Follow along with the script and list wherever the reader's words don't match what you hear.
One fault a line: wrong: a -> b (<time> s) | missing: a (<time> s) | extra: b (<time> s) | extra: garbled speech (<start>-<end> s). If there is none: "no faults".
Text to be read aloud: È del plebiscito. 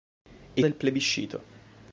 no faults